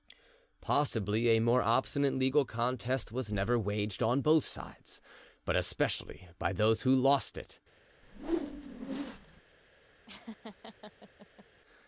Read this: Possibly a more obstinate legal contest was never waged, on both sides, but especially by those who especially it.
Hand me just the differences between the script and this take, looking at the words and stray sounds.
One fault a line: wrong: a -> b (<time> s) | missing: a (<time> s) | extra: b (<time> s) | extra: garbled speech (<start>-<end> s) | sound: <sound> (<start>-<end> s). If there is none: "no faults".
wrong: especially -> lost (7.0 s)
sound: whoosh (8.0-9.4 s)
sound: laugh (10.1-11.5 s)